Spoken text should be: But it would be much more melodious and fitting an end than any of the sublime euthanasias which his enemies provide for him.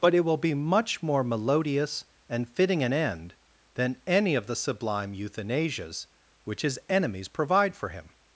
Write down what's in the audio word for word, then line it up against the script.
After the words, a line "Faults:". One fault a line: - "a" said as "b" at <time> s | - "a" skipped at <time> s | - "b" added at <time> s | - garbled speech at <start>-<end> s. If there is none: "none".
But it will be much more melodious and fitting an end than any of the sublime euthanasias which his enemies provide for him.
Faults:
- "would" said as "will" at 0.2 s